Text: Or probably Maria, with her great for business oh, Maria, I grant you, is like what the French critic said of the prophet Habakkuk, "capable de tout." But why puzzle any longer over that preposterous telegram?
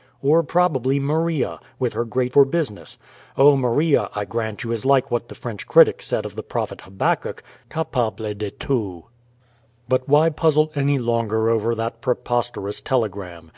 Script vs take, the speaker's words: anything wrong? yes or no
no